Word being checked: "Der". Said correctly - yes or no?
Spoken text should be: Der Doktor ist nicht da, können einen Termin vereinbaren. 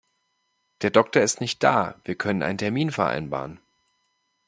yes